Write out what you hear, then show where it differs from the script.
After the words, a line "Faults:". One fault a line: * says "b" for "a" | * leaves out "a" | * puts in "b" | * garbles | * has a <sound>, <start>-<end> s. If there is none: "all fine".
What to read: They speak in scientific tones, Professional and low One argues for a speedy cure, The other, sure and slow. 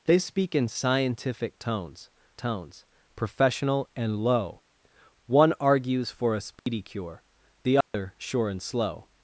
They speak in scientific tones tones, Professional and low One argues for a speedy cure, The other, sure and slow.
Faults:
* puts in "tones"
* has a dropout, 6.6-6.7 s
* has a dropout, 7.8-7.9 s